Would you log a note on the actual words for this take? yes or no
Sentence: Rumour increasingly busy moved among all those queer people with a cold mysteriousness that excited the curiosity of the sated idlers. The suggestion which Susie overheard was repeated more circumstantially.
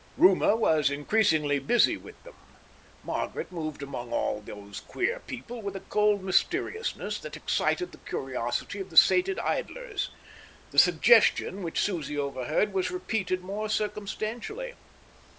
yes